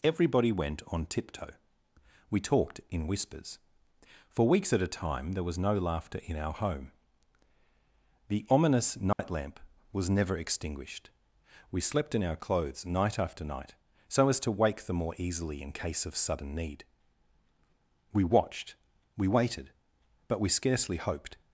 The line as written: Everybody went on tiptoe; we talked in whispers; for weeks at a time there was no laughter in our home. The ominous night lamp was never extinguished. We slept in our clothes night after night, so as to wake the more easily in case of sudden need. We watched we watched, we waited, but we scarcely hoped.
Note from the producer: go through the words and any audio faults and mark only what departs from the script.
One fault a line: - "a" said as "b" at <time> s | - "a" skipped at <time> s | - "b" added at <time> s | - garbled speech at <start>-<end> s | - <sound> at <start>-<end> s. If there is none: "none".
- dropout at 9.1-9.2 s
- "watched we" skipped at 19.3 s